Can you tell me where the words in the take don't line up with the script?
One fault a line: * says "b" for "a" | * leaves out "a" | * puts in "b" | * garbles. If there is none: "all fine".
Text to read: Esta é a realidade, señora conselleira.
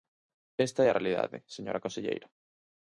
all fine